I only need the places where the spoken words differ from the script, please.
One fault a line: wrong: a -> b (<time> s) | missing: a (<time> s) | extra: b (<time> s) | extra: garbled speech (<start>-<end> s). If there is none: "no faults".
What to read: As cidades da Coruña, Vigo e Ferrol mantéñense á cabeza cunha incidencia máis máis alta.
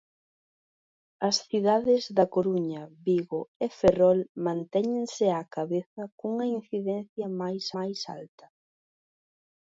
no faults